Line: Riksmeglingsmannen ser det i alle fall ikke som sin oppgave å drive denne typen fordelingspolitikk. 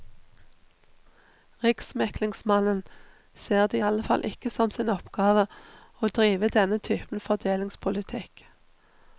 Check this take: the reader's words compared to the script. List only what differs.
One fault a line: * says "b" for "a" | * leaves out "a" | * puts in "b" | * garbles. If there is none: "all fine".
all fine